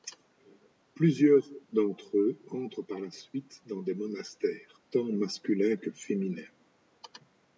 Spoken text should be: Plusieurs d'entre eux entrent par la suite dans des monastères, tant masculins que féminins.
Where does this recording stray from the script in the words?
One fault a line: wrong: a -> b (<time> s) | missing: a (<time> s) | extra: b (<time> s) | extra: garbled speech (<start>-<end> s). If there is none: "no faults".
no faults